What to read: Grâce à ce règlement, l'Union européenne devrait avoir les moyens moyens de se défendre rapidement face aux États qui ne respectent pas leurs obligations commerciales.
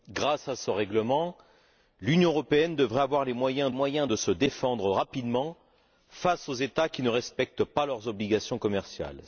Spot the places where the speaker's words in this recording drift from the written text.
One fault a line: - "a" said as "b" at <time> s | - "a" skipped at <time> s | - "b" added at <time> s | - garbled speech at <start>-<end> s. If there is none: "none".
none